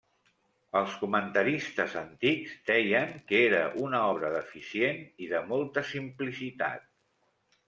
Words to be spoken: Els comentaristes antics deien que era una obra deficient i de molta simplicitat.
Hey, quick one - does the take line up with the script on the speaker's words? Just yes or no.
yes